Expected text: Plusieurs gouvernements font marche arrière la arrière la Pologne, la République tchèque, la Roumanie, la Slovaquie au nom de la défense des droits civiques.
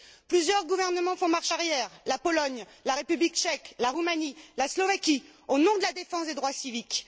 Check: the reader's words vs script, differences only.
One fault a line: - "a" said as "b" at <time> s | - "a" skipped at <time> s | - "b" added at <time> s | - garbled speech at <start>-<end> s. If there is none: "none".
- "arrière la" skipped at 2.2 s